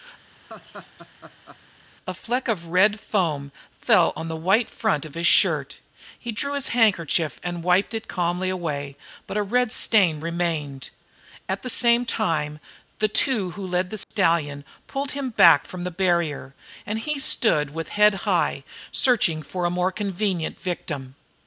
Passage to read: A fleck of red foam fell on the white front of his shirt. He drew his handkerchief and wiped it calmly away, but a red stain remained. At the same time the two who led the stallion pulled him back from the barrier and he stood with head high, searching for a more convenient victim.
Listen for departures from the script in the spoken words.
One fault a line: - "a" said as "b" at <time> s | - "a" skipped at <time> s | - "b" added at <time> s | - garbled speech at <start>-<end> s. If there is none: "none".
none